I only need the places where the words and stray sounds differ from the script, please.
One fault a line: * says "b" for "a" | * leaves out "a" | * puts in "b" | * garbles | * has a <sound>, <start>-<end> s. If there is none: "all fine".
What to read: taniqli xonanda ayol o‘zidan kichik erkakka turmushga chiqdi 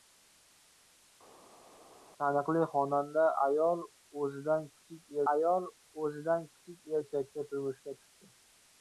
* puts in "ayol o‘zidan kichik"